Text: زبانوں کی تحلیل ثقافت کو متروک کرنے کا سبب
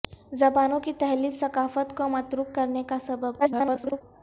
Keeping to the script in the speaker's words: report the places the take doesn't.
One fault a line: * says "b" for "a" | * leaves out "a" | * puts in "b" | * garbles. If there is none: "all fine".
* garbles